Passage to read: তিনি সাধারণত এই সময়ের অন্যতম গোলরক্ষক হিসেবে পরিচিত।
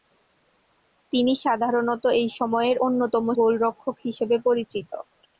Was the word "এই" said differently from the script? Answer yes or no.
no